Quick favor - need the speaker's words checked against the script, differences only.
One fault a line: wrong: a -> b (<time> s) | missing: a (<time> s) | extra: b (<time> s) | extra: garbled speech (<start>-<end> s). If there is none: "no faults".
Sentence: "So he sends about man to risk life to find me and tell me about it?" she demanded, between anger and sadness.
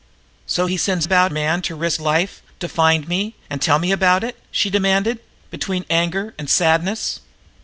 no faults